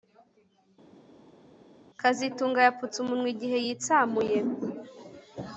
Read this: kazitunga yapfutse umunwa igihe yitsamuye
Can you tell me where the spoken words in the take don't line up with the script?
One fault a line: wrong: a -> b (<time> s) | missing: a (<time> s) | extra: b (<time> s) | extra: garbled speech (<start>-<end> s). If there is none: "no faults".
no faults